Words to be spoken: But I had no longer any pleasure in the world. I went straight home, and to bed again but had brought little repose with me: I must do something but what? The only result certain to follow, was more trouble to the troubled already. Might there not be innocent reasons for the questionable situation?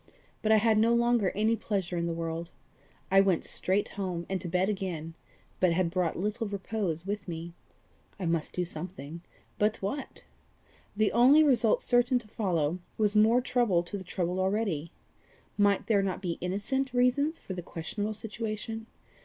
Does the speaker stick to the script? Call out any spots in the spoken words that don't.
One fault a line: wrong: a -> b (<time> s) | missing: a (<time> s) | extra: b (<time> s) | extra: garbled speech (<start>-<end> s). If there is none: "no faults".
no faults